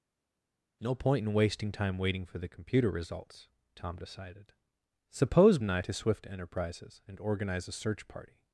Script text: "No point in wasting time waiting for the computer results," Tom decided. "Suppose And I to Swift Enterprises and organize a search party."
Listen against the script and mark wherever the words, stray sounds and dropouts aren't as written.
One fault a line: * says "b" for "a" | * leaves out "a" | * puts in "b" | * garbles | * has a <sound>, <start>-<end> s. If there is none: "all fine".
all fine